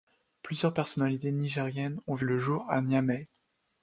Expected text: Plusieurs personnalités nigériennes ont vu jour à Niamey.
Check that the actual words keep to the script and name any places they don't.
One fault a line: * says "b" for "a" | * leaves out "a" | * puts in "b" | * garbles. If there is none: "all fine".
* puts in "le"